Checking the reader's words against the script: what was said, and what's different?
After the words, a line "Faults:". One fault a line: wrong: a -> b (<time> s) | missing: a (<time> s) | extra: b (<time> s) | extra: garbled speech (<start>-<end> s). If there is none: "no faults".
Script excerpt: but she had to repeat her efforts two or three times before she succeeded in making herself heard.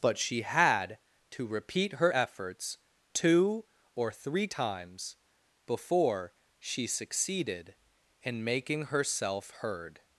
but she had to repeat her efforts two or three times before she succeeded in making herself heard.
Faults:
no faults